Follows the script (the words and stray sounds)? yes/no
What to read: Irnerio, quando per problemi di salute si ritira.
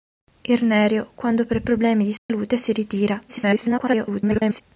no